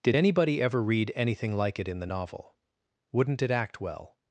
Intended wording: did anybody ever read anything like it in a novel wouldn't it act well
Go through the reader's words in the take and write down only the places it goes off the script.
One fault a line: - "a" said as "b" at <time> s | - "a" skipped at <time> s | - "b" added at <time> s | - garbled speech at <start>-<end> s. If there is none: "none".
- "a" said as "the" at 2.0 s